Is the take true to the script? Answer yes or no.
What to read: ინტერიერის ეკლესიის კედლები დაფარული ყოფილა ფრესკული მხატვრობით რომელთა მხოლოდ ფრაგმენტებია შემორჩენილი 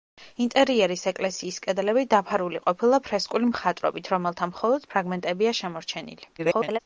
no